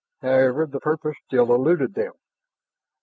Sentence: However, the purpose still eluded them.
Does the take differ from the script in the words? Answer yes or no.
no